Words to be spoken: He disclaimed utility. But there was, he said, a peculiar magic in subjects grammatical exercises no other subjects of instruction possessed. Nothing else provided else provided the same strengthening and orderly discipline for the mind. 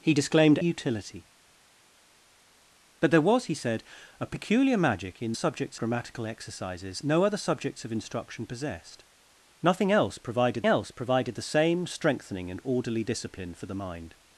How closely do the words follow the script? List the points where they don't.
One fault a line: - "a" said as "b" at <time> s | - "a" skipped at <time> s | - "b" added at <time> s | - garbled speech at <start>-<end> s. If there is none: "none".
none